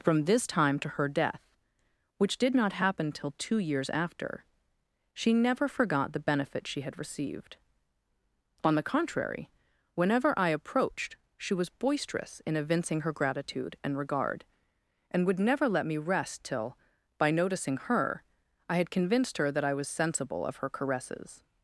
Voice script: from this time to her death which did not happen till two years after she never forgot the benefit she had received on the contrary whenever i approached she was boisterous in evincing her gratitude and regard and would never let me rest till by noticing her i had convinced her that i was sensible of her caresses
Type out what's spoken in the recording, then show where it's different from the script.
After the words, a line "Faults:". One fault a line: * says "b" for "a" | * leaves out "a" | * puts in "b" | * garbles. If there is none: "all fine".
from this time to her death which did not happen till two years after she never forgot the benefit she had received on the contrary whenever i approached she was boisterous in evincing her gratitude and regard and would never let me rest till by noticing her i had convinced her that i was sensible of her caresses
Faults:
all fine